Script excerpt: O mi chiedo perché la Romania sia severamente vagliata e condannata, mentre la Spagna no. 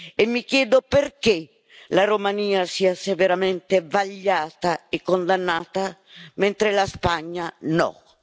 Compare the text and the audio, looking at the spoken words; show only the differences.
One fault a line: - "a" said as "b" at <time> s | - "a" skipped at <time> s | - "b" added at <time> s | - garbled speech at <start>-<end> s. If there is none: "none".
- "O" said as "E" at 0.1 s